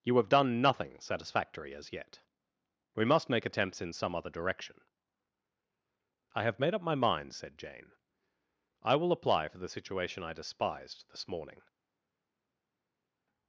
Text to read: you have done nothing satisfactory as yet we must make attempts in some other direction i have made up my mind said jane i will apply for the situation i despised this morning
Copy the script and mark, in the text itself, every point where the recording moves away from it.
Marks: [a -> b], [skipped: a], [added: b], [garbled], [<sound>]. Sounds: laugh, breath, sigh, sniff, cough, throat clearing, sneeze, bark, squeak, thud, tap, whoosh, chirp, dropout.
you have done nothing satisfactory as yet we must make attempts in some other direction i have made up my mind said jane i will apply for the situation i despised this morning